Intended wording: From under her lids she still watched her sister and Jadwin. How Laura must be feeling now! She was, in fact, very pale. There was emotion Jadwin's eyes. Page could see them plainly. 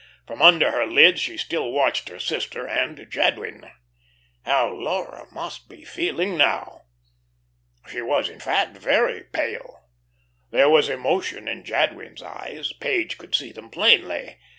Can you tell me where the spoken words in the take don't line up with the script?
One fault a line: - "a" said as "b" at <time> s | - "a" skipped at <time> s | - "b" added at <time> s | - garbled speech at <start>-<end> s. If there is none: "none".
- "in" added at 11.5 s